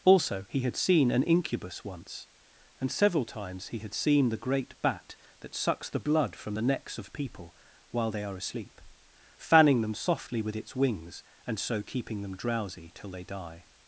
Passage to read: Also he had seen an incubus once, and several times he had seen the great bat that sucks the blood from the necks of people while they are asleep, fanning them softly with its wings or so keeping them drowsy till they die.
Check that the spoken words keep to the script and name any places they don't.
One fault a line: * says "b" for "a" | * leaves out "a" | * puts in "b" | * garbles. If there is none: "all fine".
* says "and" for "or"